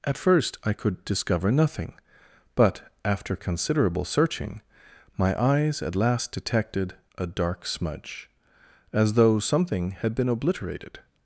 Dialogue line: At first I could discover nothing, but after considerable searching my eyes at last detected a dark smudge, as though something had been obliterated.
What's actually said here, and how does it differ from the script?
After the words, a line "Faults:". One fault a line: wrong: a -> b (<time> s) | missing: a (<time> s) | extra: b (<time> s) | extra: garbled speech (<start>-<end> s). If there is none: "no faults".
At first I could discover nothing, but after considerable searching my eyes at last detected a dark smudge, as though something had been obliterated.
Faults:
no faults